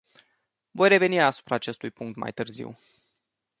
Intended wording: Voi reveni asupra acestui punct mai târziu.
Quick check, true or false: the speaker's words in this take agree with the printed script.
true